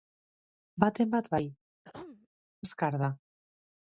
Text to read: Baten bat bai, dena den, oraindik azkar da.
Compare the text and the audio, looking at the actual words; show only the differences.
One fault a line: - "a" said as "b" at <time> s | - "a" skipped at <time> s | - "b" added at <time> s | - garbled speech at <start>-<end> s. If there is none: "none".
- "dena den oraindik" skipped at 1.4 s